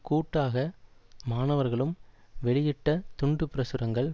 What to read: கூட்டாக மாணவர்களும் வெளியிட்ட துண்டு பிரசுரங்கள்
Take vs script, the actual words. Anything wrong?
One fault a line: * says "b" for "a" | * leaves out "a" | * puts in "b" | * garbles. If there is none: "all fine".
all fine